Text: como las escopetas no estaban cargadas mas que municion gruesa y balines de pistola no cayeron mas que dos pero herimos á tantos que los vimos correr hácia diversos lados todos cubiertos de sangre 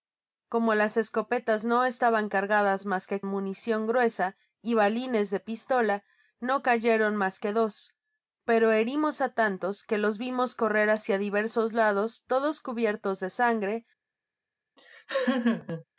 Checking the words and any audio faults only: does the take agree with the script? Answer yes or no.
no